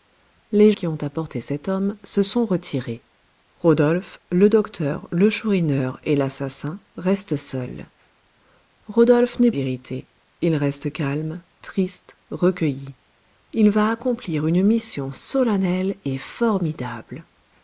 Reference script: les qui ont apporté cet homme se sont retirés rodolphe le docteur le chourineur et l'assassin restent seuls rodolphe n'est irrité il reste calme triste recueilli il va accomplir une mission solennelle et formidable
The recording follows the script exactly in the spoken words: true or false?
true